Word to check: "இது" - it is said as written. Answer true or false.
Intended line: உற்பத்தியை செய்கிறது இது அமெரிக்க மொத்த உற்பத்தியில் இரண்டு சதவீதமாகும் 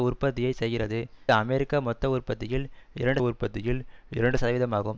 false